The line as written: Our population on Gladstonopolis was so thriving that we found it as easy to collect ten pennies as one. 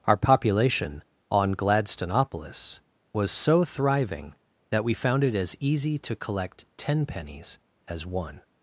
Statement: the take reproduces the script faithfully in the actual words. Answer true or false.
true